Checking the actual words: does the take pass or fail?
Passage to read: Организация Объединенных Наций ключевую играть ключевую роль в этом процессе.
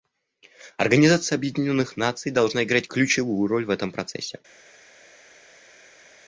fail